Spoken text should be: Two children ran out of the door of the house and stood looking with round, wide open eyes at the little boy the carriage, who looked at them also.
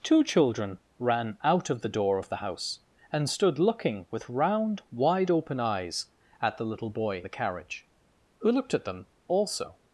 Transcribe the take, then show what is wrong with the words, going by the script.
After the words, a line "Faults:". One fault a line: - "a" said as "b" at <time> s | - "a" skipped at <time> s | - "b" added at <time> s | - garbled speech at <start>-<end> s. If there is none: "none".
Two children ran out of the door of the house and stood looking with round, wide open eyes at the little boy the carriage, who looked at them also.
Faults:
none